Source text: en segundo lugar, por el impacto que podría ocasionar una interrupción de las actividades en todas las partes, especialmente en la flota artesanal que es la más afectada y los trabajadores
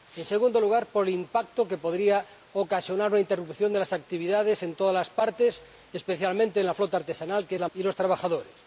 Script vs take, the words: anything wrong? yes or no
yes